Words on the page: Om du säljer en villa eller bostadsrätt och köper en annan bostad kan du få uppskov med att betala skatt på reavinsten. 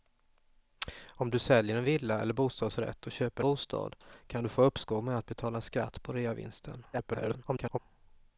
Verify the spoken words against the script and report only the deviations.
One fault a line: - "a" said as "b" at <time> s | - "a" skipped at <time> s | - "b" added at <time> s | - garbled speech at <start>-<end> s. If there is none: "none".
- "en annan" skipped at 3.4 s
- garbled speech at 6.9-7.8 s